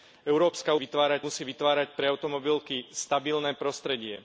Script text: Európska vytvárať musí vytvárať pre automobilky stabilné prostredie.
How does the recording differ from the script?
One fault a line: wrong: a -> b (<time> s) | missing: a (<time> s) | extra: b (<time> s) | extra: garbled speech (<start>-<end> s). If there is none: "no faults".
no faults